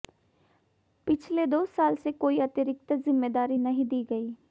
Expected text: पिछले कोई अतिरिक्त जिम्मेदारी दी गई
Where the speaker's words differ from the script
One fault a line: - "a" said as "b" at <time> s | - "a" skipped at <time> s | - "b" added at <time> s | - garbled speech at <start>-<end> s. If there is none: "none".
- "दो साल से" added at 1.4 s
- "नहीं" added at 3.6 s